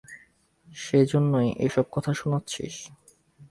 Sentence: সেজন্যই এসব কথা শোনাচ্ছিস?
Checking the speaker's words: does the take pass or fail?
pass